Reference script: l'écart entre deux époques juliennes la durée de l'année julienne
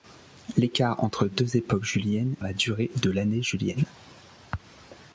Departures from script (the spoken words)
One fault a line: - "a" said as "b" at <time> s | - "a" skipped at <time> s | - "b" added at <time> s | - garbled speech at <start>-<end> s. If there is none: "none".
none